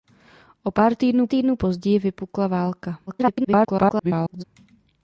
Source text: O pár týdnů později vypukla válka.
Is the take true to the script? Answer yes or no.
no